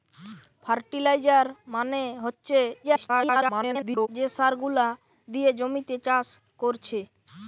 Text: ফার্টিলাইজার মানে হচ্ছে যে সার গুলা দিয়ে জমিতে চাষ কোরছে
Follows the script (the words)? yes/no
no